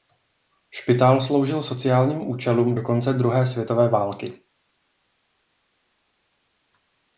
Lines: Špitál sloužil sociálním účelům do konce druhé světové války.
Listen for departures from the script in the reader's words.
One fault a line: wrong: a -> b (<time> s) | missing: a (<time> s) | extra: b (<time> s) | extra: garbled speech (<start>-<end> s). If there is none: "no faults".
no faults